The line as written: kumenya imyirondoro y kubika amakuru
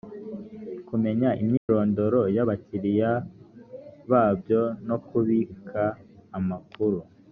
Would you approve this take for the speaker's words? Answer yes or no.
no